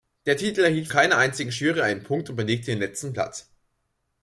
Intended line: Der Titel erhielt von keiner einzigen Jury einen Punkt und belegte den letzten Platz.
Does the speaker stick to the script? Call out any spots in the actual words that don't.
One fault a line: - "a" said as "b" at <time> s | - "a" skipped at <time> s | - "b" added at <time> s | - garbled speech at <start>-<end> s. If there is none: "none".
- "von" skipped at 0.9 s